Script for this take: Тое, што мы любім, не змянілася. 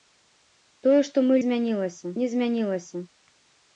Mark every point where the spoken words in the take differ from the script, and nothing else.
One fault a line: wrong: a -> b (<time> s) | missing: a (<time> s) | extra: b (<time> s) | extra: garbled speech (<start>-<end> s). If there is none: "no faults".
wrong: любім -> змянілася (1.4 s)